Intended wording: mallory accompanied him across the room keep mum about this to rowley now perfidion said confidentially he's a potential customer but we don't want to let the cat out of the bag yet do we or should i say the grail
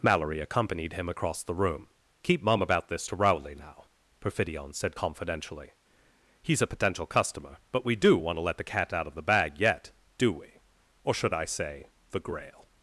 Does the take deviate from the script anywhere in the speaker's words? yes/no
yes